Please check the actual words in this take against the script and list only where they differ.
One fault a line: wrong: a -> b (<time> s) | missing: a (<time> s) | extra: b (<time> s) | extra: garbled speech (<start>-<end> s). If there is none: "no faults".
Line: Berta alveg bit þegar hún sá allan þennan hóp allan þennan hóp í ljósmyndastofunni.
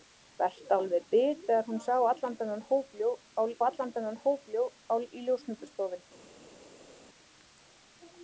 no faults